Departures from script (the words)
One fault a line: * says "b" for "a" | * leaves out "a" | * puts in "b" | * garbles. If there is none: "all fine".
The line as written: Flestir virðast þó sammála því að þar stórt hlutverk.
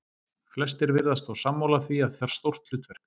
all fine